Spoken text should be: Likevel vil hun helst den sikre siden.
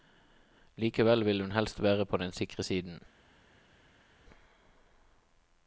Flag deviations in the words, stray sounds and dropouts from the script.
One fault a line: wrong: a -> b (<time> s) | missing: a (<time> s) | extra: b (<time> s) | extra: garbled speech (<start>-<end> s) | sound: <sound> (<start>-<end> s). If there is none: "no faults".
extra: være på (1.8 s)